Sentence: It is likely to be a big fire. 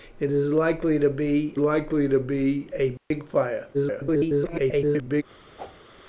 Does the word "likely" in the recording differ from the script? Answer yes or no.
no